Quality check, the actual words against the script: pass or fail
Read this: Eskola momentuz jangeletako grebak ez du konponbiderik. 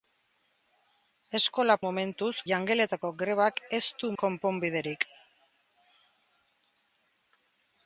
pass